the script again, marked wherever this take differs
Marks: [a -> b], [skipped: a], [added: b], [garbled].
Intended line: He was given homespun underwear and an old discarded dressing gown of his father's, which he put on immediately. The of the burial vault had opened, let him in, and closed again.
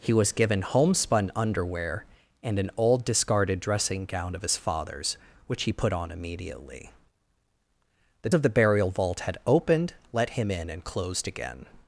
He was given homespun underwear and an old discarded dressing gown of his father's, which he put on immediately. The of the burial vault had opened, let him in, and closed again.